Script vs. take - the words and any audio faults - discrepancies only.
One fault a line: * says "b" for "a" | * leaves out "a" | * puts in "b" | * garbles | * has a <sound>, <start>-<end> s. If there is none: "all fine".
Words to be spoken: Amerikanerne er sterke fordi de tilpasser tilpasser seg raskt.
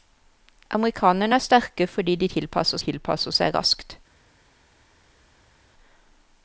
all fine